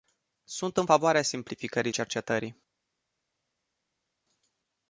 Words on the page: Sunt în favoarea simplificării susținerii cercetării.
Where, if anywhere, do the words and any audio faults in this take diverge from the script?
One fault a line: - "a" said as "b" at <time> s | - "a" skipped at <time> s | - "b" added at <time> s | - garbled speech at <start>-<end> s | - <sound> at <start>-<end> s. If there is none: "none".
- "susținerii" skipped at 1.9 s